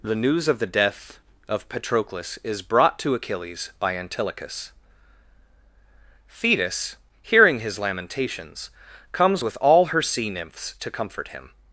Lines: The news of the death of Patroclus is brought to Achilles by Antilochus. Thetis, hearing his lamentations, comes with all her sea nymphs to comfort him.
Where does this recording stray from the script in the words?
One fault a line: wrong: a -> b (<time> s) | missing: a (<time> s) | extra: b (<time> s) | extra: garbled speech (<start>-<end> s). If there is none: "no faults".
no faults